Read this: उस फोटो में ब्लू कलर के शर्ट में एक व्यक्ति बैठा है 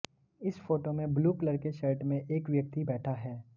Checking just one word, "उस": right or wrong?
wrong